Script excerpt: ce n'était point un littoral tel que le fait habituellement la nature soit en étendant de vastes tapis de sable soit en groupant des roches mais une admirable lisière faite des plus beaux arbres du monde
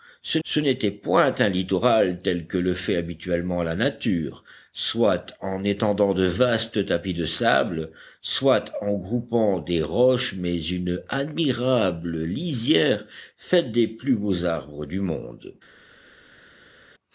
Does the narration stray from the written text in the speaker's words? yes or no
yes